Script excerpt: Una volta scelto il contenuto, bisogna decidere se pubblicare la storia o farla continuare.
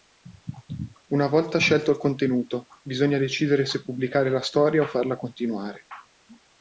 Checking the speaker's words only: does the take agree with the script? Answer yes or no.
yes